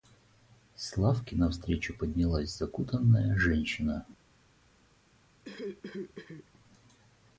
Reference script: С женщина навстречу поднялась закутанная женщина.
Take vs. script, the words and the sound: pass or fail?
fail